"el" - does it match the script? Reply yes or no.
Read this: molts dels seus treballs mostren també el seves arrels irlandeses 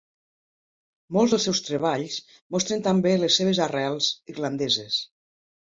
no